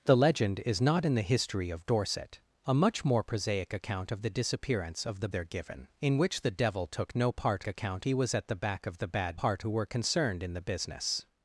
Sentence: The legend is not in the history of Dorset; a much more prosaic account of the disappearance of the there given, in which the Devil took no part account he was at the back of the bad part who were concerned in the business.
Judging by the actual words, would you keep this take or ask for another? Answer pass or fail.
pass